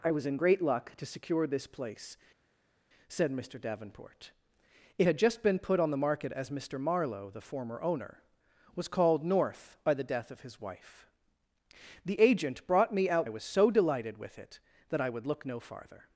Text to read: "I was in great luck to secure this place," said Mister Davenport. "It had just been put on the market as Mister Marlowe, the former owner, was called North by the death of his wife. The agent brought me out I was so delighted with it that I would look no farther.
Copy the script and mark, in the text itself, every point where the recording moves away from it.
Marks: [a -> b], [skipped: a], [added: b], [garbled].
"I was in great luck to secure this place," said Mister Davenport. "It had just been put on the market as Mister Marlowe, the former owner, was called North by the death of his wife. The agent brought me out I was so delighted with it that I would look no farther.